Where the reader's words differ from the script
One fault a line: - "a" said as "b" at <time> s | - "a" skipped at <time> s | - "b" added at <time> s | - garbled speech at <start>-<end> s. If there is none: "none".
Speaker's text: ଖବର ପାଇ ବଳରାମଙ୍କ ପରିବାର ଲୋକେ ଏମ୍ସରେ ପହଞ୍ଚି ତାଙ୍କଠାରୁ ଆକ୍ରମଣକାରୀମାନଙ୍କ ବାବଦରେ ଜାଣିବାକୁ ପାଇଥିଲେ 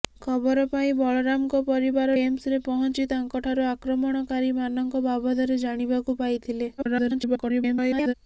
- "ଲୋକେ" skipped at 2.1 s
- garbled speech at 6.8-8.1 s